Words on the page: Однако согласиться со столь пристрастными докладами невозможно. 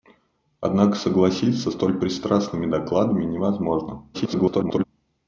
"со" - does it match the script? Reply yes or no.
no